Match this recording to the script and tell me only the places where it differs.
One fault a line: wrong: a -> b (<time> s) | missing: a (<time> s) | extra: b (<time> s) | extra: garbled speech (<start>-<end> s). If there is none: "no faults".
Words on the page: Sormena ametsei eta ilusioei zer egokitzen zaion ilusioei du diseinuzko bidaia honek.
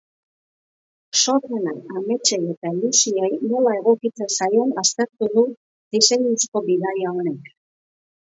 wrong: zer -> nola (3.5 s)
wrong: ilusioei -> aztertu (4.8 s)